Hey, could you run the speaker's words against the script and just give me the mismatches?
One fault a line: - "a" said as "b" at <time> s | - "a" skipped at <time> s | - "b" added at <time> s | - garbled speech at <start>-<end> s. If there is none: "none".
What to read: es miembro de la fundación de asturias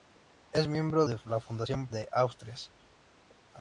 none